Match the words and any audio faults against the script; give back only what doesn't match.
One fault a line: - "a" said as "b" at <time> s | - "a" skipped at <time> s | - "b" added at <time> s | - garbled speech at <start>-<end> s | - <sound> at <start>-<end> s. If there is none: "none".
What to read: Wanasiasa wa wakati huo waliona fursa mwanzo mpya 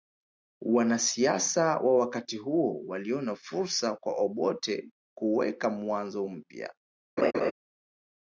- "kwa Obote kuweka" added at 4.0 s
- laugh at 7.2-7.5 s